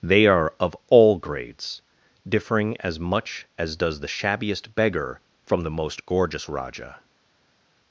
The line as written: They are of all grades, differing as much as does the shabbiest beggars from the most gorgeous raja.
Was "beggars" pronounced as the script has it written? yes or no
no